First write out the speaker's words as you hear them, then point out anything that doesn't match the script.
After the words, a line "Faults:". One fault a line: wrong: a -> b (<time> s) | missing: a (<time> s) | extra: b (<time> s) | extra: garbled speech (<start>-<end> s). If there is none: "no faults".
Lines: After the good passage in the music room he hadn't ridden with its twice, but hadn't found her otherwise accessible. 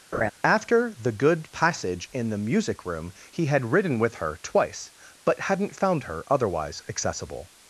After the good passage in the music room he had ridden with her twice, but hadn't found her otherwise accessible.
Faults:
wrong: hadn't -> had (3.5 s)
wrong: its -> her (4.2 s)